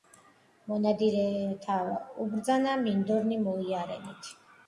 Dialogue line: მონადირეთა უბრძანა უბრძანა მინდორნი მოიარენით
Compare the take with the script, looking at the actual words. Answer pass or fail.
fail